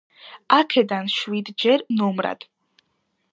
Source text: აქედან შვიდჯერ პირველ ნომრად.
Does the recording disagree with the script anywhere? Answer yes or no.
yes